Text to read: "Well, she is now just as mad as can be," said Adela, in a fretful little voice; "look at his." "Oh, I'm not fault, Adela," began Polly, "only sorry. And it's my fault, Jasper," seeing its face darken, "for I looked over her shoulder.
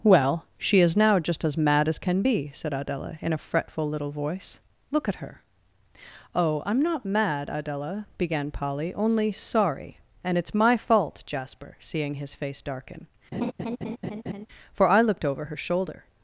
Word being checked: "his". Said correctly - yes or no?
no